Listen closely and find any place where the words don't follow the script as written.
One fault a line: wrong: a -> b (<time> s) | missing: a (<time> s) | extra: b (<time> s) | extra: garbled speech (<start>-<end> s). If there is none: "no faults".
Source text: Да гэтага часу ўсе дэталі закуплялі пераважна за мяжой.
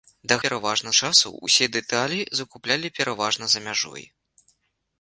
wrong: гэтага -> пераважна (0.4 s)